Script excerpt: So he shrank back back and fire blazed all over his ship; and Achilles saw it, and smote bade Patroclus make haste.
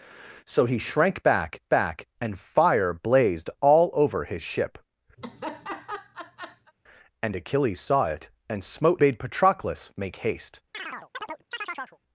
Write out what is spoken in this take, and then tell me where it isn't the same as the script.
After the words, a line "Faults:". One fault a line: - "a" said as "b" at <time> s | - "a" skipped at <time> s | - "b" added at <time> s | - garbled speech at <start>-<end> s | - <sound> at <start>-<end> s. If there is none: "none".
So he shrank back back and fire blazed all over his ship; and Achilles saw it, and smote bade Patroclus make haste.
Faults:
- laugh at 5.2-6.7 s
- chirp at 10.7-12.0 s